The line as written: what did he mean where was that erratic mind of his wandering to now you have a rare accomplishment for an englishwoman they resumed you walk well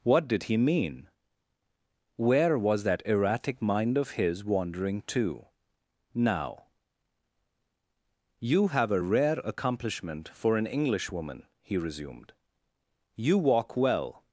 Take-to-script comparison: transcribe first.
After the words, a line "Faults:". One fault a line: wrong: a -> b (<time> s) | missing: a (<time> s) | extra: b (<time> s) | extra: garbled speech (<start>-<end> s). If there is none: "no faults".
what did he mean where was that erratic mind of his wandering to now you have a rare accomplishment for an englishwoman he resumed you walk well
Faults:
wrong: they -> he (11.6 s)